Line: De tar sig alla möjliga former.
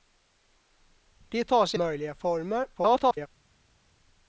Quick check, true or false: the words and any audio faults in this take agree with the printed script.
false